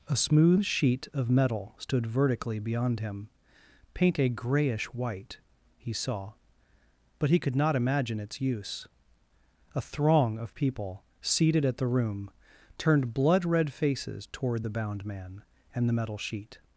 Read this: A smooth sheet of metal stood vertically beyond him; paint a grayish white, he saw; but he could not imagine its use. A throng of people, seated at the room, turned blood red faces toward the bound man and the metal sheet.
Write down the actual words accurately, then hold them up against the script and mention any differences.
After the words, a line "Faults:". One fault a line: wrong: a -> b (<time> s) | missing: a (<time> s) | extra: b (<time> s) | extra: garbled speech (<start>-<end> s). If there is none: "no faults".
A smooth sheet of metal stood vertically beyond him; paint a grayish white, he saw; but he could not imagine its use. A throng of people, seated at the room, turned blood red faces toward the bound man and the metal sheet.
Faults:
no faults